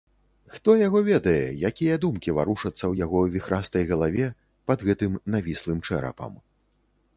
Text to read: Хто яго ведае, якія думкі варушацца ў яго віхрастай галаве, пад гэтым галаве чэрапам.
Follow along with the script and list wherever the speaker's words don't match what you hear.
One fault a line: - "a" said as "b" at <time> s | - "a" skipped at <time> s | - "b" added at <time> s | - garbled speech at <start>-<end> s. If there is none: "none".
- "галаве" said as "навіслым" at 5.4 s